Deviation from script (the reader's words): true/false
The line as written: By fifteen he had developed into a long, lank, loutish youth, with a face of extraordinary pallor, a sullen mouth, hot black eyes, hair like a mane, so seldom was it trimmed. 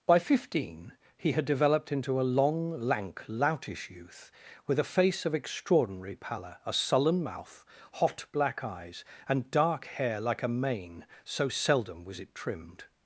true